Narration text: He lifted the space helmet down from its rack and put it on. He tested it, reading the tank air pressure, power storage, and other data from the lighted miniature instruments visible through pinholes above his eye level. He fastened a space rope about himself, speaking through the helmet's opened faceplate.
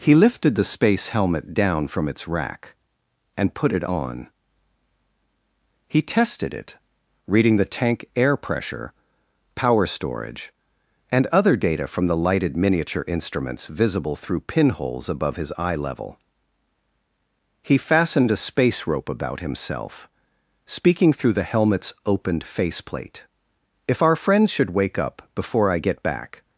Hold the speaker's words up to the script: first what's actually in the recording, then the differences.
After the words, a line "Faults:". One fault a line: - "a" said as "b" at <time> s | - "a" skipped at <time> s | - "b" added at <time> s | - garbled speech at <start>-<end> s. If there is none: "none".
He lifted the space helmet down from its rack and put it on. He tested it, reading the tank air pressure, power storage, and other data from the lighted miniature instruments visible through pinholes above his eye level. He fastened a space rope about himself, speaking through the helmet's opened faceplate. "If our friends should wake up before I get back
Faults:
- "If our friends should wake up before I get back" added at 23.9 s